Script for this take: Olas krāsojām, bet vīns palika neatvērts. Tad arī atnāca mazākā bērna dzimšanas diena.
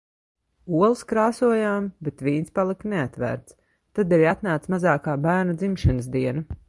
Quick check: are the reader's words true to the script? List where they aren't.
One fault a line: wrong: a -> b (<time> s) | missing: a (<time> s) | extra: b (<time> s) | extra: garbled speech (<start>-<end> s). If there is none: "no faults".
no faults